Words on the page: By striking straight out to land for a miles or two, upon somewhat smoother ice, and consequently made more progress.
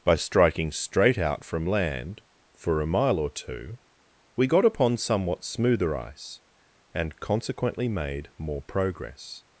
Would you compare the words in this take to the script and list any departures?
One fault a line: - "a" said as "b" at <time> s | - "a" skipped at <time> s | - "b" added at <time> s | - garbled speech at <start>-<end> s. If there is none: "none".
- "to" said as "from" at 1.4 s
- "miles" said as "mile" at 2.9 s
- "we got" added at 4.3 s